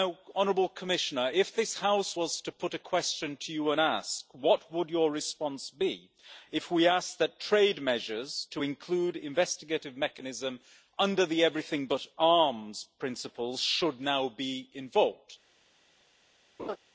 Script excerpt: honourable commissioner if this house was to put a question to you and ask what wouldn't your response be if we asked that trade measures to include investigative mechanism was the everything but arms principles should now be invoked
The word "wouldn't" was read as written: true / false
false